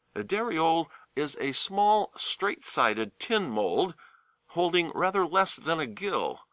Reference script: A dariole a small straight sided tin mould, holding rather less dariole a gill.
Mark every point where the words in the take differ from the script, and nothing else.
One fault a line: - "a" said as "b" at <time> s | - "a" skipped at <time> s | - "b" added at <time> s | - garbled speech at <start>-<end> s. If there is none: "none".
- "is" added at 1.1 s
- "dariole" said as "than" at 5.6 s